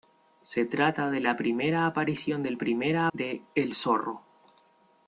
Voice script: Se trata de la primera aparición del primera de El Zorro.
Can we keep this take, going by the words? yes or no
yes